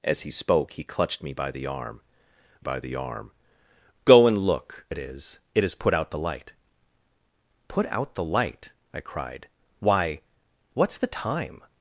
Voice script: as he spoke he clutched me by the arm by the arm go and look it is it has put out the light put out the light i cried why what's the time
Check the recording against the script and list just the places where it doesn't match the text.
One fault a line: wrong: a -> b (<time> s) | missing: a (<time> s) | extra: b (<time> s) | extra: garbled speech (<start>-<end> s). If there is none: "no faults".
no faults